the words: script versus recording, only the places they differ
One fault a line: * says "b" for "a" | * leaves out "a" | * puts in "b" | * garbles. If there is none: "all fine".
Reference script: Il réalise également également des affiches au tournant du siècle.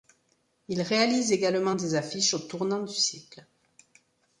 * leaves out "également"